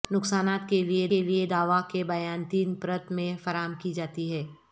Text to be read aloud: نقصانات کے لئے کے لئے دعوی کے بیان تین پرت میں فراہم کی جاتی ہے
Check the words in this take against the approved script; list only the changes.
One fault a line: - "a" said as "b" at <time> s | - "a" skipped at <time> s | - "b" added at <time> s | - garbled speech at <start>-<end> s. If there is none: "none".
none